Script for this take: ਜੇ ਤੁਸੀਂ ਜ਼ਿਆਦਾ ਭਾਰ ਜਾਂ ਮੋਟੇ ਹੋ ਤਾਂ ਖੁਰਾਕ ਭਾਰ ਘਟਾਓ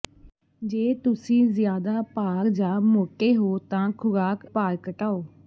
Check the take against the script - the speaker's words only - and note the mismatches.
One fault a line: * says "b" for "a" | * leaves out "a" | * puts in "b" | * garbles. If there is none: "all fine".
all fine